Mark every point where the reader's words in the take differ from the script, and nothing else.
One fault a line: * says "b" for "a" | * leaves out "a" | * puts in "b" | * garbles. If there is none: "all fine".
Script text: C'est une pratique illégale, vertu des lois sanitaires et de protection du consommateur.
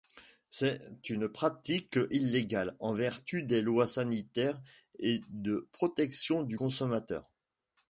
* puts in "en"